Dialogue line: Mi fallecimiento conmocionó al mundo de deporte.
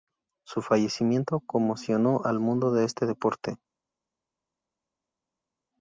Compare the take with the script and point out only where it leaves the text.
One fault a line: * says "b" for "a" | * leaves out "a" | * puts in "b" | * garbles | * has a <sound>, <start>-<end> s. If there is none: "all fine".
* says "Su" for "Mi"
* puts in "este"